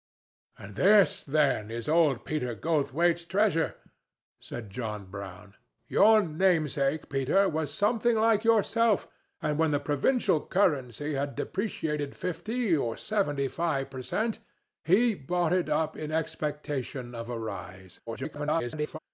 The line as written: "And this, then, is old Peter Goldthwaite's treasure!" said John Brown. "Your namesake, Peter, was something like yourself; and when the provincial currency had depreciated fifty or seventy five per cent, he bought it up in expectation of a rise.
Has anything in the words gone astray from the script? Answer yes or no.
yes